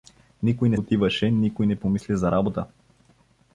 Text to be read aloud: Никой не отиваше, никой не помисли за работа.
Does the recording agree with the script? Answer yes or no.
yes